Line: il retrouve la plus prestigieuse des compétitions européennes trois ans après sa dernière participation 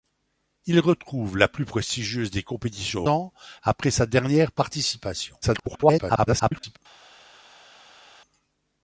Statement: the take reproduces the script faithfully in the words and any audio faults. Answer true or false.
false